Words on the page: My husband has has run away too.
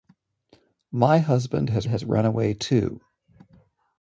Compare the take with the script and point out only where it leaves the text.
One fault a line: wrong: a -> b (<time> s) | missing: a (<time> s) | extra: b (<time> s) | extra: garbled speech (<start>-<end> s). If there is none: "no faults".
no faults